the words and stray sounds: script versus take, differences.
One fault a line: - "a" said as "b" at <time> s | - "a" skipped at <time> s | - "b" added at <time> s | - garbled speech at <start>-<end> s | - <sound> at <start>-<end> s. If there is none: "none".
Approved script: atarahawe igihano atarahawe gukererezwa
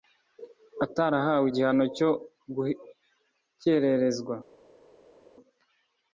- "atarahawe" said as "cyo" at 2.0 s